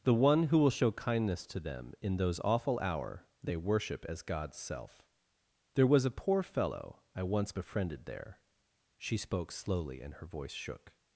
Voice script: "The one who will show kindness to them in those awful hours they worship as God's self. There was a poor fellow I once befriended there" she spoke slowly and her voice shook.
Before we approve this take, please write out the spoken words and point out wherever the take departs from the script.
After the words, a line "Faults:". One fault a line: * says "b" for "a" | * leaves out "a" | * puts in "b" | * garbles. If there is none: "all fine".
"The one who will show kindness to them in those awful hour they worship as God's self. There was a poor fellow I once befriended there" she spoke slowly and her voice shook.
Faults:
* says "hour" for "hours"